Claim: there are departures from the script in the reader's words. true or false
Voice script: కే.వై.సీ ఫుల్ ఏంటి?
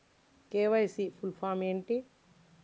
true